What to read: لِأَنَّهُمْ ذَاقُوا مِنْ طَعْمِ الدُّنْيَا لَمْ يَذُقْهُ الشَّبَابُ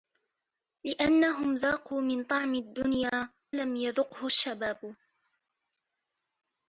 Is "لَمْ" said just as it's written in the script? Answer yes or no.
yes